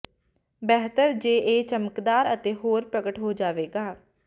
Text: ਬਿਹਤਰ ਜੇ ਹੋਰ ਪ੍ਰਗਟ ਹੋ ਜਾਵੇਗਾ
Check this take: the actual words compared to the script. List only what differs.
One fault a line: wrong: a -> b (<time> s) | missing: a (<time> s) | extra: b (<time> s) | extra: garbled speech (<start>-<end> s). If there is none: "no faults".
extra: ਇਹ ਚਮਕਦਾਰ ਅਤੇ (1.4 s)